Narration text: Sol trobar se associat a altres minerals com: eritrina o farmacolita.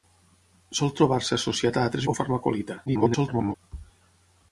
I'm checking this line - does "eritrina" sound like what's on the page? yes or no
no